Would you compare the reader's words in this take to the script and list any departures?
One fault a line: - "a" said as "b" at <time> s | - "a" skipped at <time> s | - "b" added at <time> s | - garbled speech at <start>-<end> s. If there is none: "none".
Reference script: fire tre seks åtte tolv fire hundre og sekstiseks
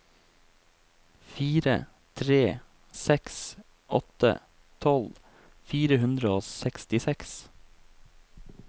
none